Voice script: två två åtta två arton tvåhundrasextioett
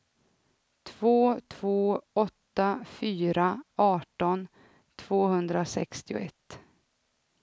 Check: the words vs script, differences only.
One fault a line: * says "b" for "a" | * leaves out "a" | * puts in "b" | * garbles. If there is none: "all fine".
* says "fyra" for "två"